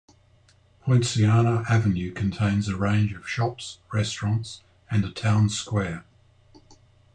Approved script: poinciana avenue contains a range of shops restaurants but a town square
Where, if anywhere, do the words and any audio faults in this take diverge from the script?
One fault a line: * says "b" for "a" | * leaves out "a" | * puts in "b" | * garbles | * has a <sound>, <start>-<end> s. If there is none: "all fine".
* says "and" for "but"